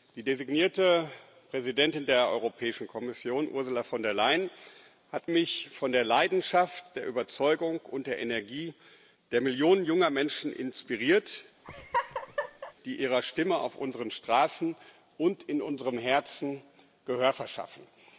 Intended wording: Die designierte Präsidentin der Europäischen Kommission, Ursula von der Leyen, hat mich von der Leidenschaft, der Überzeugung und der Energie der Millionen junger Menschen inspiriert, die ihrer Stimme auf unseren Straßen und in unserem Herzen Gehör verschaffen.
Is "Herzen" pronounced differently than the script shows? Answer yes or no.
no